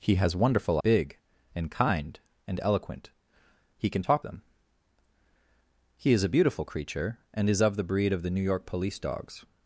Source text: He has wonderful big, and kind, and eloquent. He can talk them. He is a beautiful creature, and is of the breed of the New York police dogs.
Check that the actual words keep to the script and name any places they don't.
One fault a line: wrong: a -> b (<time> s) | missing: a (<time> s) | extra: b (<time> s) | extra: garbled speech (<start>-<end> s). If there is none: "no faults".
no faults